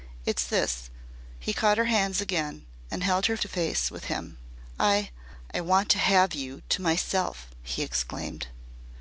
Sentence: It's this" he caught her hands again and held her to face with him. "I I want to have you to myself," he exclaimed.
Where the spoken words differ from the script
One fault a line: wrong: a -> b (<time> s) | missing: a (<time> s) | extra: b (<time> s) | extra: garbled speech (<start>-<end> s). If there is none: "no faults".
no faults